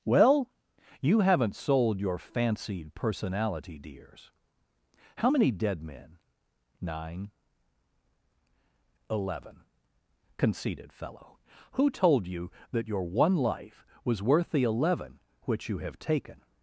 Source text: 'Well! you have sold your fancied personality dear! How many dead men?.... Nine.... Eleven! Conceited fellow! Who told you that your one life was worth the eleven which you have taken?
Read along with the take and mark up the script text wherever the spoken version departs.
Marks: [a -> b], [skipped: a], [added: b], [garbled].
'Well! you [have -> haven't] sold your fancied personality [dear! -> dears] How many dead men?.... Nine.... Eleven! Conceited fellow! Who told you that your one life was worth the eleven which you have taken?